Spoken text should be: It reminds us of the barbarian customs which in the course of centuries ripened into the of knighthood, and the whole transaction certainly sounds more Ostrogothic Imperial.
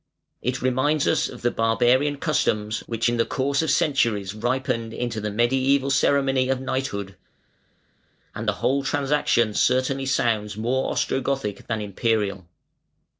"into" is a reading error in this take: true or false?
false